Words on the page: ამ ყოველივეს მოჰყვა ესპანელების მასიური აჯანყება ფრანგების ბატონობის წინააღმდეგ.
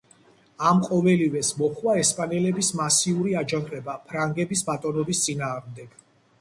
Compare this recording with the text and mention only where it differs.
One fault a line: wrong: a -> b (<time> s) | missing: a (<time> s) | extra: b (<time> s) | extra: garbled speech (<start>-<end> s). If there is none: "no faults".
no faults